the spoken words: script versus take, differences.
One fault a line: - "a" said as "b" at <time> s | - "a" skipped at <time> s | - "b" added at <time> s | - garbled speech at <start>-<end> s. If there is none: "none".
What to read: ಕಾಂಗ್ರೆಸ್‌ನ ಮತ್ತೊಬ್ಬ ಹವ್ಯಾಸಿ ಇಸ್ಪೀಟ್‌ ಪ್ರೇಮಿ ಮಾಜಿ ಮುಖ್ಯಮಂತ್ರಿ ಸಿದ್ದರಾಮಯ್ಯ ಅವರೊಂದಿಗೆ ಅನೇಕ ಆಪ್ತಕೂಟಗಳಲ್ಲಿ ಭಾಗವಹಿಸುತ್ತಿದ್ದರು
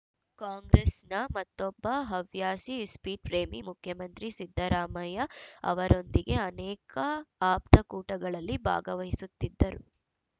- "ಮಾಜಿ" skipped at 3.6 s